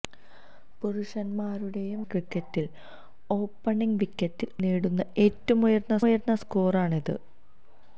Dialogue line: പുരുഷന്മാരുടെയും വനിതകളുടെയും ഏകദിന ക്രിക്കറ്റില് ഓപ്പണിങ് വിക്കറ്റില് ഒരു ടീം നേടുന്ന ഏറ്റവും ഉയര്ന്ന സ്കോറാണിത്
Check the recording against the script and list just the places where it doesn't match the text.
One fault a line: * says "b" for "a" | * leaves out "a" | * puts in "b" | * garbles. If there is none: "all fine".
* leaves out "വനിതകളുടെയും ഏകദിന"
* leaves out "ഒരു ടീം"
* puts in "ഉയര്ന്ന"